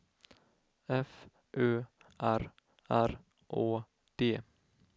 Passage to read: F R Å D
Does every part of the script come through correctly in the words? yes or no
no